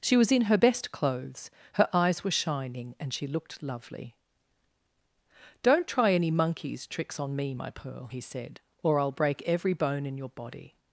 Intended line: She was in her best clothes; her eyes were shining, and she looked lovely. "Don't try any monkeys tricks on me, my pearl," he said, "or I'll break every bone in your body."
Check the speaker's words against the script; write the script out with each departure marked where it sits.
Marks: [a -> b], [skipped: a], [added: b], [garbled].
She was in her best clothes; her eyes were shining, and she looked lovely. "Don't try any monkeys tricks on me, my pearl," he said, "or I'll break every bone in your body."